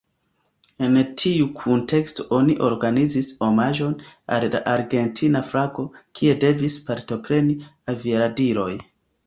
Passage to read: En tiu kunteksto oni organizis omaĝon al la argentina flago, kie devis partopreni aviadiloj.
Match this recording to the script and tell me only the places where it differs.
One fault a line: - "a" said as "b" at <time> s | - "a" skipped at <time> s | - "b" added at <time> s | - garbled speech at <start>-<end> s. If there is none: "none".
none